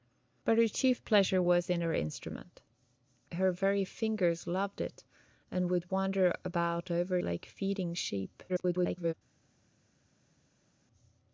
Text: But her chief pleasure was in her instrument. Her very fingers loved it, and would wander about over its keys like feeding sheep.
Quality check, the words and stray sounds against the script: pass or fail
fail